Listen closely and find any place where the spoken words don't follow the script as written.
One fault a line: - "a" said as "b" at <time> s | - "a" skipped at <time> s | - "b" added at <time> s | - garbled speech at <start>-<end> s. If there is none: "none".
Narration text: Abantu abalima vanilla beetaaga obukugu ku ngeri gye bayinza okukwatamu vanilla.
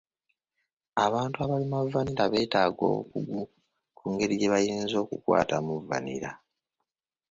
none